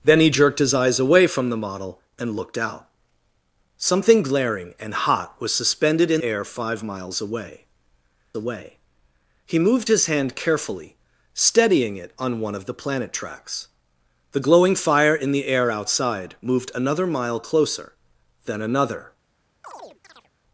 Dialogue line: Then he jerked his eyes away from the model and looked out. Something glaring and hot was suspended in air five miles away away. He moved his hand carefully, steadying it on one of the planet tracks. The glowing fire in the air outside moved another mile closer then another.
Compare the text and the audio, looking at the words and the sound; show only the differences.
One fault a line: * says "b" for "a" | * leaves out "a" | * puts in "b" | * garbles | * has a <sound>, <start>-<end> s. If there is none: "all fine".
* has a chirp, 19.6-20.3 s